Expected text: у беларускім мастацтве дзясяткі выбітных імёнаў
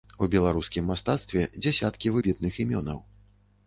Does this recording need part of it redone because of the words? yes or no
no